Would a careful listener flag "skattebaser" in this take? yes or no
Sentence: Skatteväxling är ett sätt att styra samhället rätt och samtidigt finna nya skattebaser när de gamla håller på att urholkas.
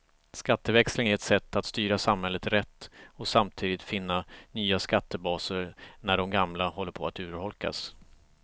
no